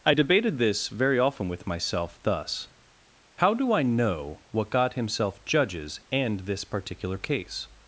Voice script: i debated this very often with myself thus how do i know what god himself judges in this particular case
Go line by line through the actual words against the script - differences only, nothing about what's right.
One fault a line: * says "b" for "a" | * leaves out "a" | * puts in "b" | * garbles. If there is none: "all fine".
* says "and" for "in"